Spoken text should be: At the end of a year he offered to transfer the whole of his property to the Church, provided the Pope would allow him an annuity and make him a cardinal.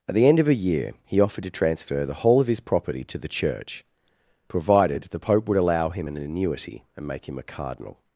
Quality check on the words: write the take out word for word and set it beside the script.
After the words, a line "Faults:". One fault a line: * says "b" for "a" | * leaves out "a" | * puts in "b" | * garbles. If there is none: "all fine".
At the end of a year he offered to transfer the whole of his property to the Church, provided the Pope would allow him an annuity and make him a cardinal.
Faults:
all fine